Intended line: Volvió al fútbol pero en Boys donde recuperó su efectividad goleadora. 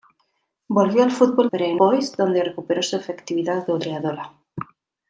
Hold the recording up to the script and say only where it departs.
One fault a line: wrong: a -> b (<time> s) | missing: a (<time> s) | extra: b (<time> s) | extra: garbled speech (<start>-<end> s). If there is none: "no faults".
no faults